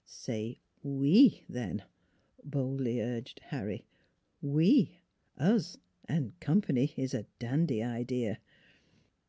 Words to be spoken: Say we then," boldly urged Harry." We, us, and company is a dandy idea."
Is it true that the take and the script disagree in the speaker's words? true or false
false